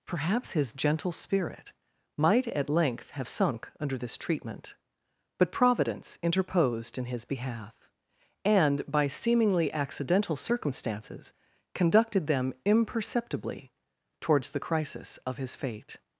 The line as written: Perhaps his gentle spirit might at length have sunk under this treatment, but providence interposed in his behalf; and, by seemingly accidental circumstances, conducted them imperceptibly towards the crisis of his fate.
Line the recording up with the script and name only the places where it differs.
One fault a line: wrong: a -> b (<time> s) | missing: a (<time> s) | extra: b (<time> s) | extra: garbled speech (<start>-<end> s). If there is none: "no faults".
no faults